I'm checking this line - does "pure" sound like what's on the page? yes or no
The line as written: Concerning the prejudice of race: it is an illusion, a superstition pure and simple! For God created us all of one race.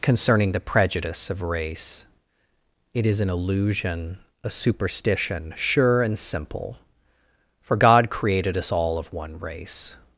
no